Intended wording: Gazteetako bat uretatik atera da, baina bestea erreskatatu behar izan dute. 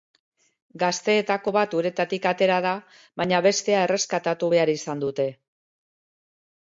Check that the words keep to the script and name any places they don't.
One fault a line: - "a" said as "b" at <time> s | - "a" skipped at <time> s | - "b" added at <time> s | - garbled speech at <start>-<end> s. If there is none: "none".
none